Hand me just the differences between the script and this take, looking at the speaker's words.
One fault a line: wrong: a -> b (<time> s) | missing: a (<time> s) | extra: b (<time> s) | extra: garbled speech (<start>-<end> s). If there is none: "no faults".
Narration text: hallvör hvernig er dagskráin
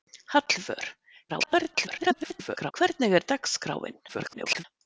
extra: garbled speech (1.3-2.7 s)
extra: garbled speech (4.1-4.6 s)